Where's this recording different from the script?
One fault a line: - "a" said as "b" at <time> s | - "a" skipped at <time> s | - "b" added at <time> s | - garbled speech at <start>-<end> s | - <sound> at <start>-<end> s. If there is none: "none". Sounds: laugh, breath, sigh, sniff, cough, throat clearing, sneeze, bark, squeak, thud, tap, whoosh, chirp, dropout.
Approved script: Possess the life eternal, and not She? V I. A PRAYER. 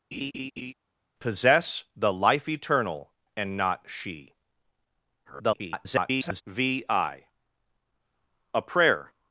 - laugh at 0.1-0.7 s
- garbled speech at 5.2-6.4 s